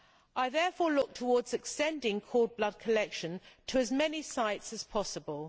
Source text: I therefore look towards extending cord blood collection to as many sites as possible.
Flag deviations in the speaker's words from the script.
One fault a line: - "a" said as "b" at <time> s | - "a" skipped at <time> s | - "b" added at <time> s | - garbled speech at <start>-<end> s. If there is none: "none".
none